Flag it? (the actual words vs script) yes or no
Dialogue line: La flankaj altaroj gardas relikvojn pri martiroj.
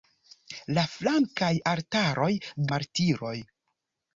yes